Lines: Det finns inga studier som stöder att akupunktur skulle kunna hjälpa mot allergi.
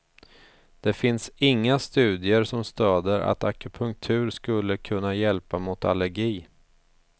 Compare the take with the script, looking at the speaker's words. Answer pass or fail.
pass